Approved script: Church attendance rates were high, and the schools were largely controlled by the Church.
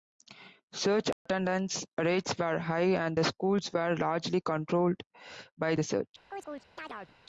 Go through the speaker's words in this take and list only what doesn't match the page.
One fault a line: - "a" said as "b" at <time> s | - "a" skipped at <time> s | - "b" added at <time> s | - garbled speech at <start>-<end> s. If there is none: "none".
none